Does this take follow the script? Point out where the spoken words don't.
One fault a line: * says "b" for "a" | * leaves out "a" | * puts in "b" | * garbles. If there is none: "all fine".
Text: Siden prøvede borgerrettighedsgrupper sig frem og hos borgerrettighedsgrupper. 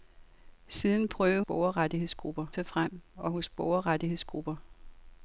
all fine